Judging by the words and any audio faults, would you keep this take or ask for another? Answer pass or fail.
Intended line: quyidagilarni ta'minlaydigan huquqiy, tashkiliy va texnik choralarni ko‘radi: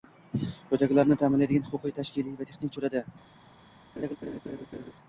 fail